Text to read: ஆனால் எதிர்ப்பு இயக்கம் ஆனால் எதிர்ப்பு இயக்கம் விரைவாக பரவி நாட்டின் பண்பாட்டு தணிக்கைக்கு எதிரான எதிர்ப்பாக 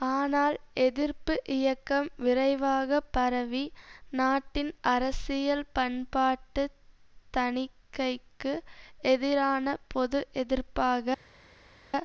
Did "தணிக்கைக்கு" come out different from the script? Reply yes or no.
no